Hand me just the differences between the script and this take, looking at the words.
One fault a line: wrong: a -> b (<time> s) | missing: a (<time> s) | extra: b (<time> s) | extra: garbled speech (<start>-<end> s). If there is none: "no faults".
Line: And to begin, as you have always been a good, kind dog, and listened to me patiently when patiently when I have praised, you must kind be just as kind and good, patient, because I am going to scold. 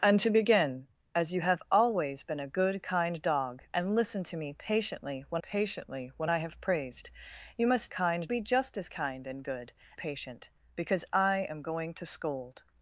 no faults